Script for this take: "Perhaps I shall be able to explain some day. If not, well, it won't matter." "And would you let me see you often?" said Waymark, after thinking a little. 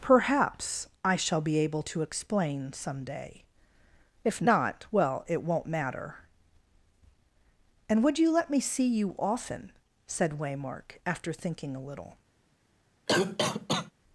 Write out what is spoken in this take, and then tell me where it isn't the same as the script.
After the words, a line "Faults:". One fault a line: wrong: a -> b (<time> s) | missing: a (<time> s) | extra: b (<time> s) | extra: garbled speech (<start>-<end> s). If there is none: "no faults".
"Perhaps I shall be able to explain some day. If not, well, it won't matter." "And would you let me see you often?" said Waymark, after thinking a little.
Faults:
no faults